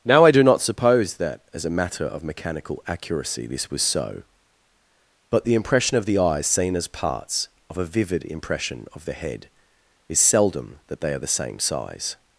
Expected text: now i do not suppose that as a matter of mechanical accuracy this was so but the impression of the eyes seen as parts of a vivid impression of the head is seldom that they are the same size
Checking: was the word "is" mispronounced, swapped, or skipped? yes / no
no